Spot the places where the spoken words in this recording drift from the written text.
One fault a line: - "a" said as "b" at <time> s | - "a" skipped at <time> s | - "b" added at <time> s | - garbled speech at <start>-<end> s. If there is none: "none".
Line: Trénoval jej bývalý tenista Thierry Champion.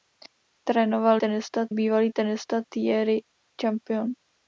- "jej" said as "tenista" at 1.2 s